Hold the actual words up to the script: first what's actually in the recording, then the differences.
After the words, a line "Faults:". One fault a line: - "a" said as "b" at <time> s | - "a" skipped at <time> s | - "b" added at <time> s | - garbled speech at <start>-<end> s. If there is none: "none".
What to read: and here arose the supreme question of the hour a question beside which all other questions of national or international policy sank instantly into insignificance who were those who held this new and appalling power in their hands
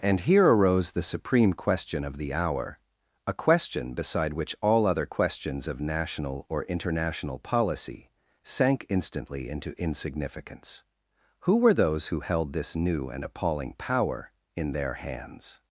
and here arose the supreme question of the hour a question beside which all other questions of national or international policy sank instantly into insignificance who were those who held this new and appalling power in their hands
Faults:
none